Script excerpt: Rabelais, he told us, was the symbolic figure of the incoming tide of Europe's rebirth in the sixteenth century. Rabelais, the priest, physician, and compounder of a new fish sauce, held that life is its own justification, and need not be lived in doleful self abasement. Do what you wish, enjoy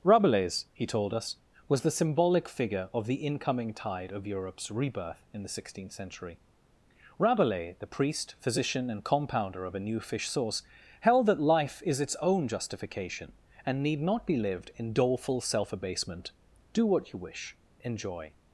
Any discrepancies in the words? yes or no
no